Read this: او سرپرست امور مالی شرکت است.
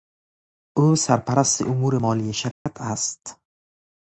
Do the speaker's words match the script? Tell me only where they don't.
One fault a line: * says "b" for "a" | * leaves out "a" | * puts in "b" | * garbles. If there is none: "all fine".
all fine